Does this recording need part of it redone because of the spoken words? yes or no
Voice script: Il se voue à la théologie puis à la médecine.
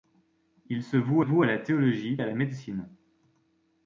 yes